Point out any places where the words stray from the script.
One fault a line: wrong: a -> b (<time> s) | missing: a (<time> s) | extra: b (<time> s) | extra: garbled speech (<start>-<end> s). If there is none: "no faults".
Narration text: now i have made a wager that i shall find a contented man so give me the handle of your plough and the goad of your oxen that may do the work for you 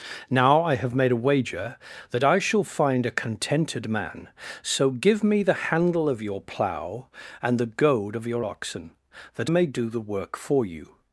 no faults